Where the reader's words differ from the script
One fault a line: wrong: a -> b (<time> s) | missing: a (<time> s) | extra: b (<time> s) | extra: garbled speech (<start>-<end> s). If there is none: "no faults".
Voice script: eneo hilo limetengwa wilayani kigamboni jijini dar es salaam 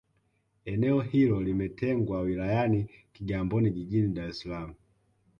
no faults